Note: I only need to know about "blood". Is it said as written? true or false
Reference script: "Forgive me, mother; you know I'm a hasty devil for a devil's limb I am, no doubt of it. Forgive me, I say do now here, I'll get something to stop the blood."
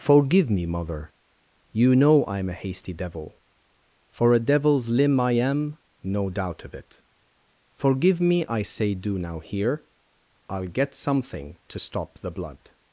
true